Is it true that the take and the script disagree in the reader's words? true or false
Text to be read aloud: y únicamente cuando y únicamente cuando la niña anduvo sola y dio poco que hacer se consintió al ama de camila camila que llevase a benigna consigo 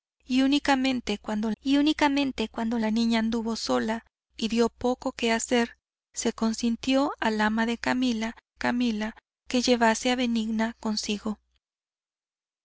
false